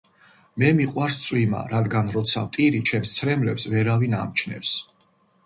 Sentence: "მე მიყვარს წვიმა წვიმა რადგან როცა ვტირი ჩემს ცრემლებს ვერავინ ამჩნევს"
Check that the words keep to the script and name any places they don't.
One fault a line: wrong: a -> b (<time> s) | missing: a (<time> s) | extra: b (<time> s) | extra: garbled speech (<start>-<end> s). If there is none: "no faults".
missing: წვიმა (1.6 s)